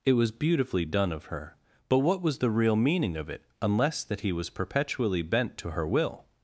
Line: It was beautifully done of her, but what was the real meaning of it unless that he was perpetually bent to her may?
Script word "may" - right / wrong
wrong